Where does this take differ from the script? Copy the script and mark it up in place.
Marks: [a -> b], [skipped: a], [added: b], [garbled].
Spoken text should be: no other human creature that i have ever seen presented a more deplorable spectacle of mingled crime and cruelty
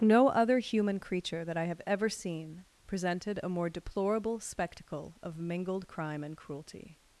no other human creature that i have ever seen presented a more deplorable spectacle of mingled crime and cruelty